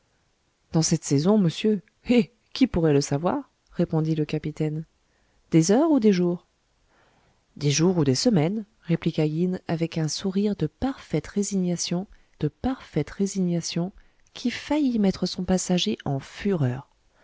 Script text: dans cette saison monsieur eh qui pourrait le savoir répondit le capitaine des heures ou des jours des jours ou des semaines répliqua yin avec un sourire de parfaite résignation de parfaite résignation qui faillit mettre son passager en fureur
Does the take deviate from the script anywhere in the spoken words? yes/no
no